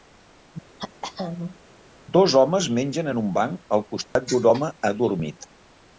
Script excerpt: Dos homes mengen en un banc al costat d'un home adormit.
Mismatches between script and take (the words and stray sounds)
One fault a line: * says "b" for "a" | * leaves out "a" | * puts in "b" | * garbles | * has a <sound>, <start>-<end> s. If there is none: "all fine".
* has a throat clearing, 0.8-1.6 s
* has a dropout, 4.0-4.2 s